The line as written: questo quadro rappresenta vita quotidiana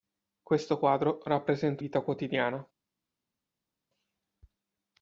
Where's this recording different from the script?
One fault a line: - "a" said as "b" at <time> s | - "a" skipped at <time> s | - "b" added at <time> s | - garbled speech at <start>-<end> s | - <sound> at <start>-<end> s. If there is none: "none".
none